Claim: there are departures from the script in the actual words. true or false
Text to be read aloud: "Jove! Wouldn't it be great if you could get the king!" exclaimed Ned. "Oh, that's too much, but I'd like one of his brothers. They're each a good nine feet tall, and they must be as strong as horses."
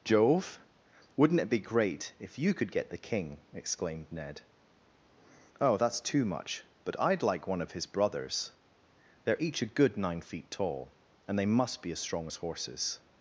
false